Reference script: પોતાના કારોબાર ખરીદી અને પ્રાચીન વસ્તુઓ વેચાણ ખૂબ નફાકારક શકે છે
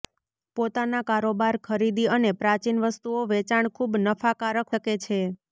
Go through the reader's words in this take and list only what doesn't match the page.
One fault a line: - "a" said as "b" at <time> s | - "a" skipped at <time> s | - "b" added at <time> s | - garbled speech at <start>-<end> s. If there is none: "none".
none